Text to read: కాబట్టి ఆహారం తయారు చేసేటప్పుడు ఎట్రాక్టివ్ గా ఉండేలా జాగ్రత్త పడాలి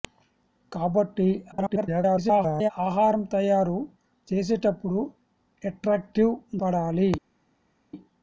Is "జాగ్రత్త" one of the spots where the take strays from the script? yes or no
yes